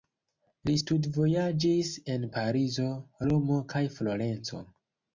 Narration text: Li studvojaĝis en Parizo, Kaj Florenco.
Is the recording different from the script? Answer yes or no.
yes